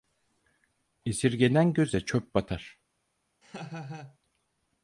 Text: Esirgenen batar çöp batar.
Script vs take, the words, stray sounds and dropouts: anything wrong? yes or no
yes